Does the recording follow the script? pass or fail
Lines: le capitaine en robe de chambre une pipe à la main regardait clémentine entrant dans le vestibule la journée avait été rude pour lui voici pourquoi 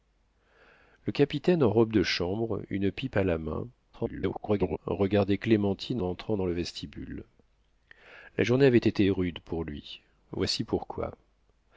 fail